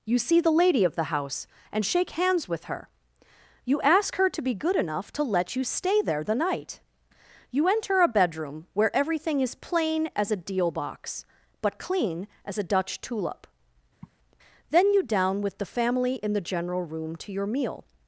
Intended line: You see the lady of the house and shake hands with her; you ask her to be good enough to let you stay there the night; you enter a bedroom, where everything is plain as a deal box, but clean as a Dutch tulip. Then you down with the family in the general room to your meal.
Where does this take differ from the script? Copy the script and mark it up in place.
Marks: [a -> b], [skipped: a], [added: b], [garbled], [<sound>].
You see the lady of the house and shake hands with her; you ask her to be good enough to let you stay there the night; you enter a bedroom, where everything is plain as a deal box, but clean as a Dutch tulip. [sigh] Then you down with the family in the general room to your meal.